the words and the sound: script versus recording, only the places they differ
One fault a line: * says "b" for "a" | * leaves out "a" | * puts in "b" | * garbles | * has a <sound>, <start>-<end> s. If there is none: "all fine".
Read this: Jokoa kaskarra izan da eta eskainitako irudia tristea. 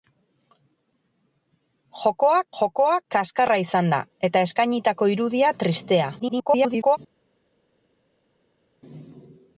* puts in "jokoa"
* garbles